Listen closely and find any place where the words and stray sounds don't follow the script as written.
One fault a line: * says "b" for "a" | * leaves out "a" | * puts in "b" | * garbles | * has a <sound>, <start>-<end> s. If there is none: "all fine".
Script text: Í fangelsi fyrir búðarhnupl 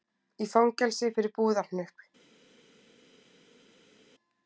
all fine